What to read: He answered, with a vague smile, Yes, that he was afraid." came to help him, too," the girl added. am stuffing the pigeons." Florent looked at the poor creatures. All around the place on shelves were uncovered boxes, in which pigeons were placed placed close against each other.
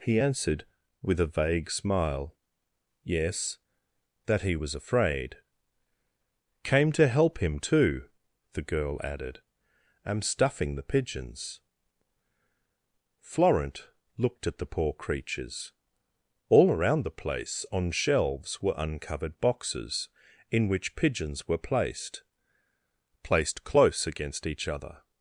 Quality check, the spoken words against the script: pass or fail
pass